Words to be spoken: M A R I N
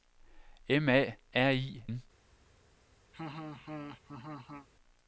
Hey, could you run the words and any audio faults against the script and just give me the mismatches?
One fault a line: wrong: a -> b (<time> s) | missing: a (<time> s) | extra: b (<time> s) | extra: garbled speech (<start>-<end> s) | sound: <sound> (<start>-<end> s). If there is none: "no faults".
sound: laugh (3.1-4.7 s)